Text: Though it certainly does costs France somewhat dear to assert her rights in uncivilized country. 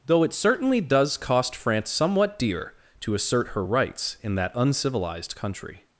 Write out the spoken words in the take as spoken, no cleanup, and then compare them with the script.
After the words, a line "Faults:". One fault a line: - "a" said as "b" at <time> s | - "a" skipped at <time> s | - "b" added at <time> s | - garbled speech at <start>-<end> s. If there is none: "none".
Though it certainly does cost France somewhat dear to assert her rights in that uncivilized country.
Faults:
- "costs" said as "cost" at 1.2 s
- "that" added at 4.3 s